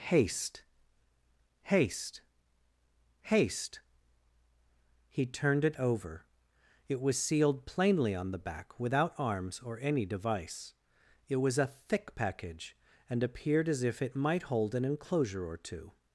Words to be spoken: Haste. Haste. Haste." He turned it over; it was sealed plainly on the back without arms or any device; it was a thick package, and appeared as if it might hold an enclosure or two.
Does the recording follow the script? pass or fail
pass